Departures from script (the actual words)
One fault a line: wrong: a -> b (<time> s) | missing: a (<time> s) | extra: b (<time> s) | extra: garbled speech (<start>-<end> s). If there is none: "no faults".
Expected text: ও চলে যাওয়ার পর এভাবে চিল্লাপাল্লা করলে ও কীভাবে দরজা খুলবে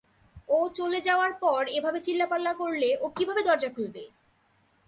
no faults